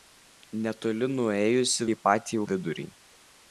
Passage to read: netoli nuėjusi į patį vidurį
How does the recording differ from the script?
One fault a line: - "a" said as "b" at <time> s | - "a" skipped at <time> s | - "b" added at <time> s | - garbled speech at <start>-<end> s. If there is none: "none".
none